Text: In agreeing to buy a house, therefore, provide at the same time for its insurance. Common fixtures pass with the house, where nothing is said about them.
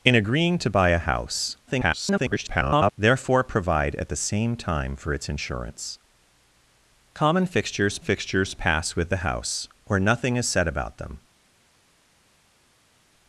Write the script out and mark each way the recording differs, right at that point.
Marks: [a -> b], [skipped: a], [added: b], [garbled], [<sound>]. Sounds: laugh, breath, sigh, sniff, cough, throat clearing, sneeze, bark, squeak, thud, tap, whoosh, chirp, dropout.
In agreeing to buy a house, [garbled] therefore, provide at the same time for its insurance. Common fixtures [added: fixtures] pass with the house, where nothing is said about them.